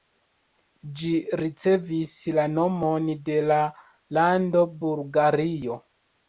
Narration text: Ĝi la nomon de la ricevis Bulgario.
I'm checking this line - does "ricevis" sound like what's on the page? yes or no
no